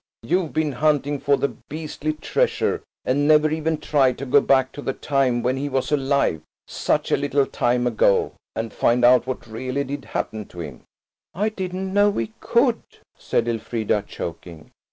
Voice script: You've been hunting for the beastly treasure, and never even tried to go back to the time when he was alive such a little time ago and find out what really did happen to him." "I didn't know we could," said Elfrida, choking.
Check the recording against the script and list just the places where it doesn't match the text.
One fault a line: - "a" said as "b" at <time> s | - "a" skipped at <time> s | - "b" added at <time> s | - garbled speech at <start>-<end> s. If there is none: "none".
none